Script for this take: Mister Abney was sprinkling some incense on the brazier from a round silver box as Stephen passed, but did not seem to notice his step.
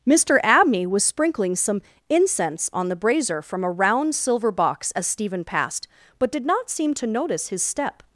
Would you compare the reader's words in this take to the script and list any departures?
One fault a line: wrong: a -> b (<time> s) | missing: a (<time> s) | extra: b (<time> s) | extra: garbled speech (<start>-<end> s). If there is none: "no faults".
no faults